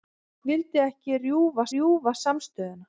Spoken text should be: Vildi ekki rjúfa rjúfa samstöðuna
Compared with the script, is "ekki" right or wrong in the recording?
right